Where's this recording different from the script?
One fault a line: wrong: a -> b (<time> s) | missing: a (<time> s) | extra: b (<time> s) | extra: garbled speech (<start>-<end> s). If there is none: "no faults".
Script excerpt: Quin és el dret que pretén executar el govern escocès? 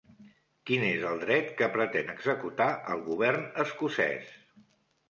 no faults